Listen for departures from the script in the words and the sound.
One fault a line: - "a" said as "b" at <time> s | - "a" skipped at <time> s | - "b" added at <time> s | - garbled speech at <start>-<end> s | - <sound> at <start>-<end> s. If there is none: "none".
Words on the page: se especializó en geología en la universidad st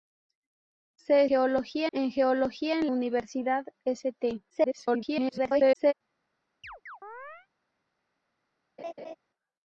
- "especializó" said as "geología" at 1.3 s
- "la" skipped at 2.9 s
- garbled speech at 4.5-5.9 s
- chirp at 6.6-7.5 s
- laugh at 8.8-9.2 s